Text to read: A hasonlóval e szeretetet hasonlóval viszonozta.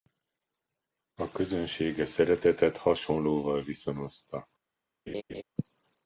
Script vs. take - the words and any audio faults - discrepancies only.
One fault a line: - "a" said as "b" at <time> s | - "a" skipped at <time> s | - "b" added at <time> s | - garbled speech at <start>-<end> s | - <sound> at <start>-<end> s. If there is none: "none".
- "hasonlóval" said as "közönség" at 1.3 s
- laugh at 5.1-5.4 s